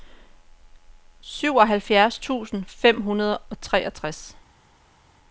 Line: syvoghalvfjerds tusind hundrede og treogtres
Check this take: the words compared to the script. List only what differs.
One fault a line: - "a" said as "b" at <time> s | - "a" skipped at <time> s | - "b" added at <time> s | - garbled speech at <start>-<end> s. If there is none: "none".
- "fem" added at 2.7 s